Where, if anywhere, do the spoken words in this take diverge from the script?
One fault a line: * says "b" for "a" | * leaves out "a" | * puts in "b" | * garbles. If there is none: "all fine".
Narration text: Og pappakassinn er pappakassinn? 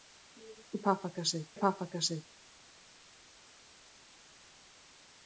all fine